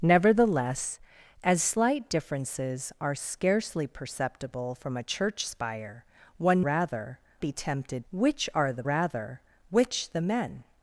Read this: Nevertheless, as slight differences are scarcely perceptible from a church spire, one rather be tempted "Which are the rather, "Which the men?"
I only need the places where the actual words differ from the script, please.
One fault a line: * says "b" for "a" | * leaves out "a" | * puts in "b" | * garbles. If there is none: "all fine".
all fine